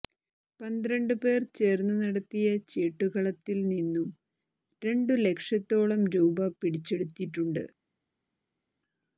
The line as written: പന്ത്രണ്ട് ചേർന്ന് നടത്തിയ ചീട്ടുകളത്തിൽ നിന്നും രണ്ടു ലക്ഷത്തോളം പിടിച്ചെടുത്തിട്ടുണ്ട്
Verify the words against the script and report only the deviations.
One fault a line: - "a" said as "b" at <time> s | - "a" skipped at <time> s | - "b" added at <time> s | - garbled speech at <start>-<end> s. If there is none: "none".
- "പേർ" added at 1.2 s
- "രൂപ" added at 6.2 s